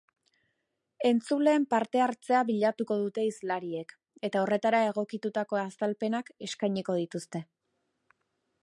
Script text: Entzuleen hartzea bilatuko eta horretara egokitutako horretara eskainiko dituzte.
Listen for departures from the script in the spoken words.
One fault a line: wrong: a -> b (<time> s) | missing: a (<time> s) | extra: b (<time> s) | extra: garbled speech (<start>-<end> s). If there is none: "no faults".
extra: parte (1.7 s)
extra: dute hizlariek (3.0 s)
wrong: horretara -> azalpenak (5.7 s)